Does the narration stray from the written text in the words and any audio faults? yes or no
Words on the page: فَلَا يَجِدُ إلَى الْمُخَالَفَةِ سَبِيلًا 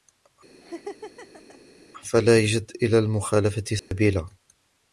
yes